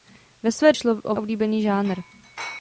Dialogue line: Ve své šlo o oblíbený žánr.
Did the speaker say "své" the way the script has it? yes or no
yes